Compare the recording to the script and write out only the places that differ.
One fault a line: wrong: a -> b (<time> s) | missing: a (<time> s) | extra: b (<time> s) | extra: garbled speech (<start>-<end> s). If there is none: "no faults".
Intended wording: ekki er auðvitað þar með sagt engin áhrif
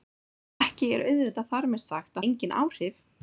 no faults